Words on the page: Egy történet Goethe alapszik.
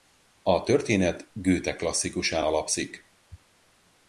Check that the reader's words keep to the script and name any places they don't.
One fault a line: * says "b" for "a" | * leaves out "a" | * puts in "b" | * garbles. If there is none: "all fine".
* says "A" for "Egy"
* puts in "klasszikusán"